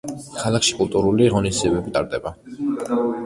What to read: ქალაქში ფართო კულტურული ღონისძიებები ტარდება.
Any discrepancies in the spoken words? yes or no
yes